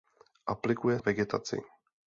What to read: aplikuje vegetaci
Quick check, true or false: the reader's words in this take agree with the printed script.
true